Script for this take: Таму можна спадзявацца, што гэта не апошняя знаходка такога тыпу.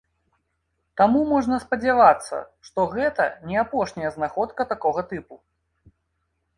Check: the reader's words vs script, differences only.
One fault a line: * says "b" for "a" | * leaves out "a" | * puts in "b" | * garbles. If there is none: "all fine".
all fine